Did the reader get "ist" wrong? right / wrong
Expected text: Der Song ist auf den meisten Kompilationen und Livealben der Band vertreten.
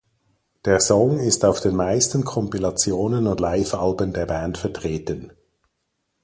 right